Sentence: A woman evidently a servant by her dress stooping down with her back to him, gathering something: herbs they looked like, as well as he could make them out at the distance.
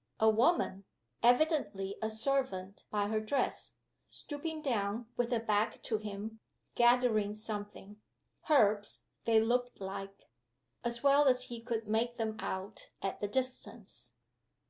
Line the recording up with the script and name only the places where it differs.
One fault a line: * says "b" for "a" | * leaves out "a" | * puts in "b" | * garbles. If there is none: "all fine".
all fine